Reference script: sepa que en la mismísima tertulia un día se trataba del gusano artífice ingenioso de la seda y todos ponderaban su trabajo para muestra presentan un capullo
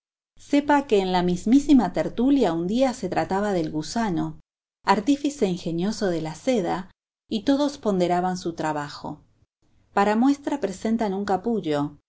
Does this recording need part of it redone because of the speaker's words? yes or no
no